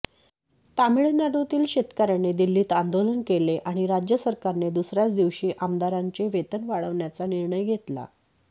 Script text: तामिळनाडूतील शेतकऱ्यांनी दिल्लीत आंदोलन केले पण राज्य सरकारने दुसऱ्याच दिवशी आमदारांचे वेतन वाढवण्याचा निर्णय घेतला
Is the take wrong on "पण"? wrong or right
wrong